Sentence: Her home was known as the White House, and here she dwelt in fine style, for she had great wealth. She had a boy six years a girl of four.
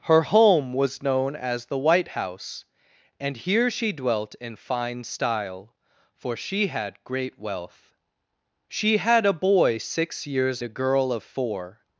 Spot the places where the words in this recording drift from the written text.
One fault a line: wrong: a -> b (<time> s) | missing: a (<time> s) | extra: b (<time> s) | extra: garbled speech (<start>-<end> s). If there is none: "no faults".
no faults